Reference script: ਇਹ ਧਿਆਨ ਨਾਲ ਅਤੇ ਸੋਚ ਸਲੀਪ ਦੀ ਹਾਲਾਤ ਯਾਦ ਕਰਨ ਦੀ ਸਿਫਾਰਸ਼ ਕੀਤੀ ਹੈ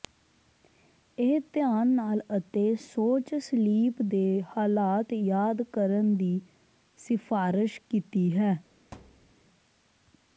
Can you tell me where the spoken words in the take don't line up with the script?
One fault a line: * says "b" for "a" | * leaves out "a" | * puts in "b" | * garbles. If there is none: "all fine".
* says "ਦੇ" for "ਦੀ"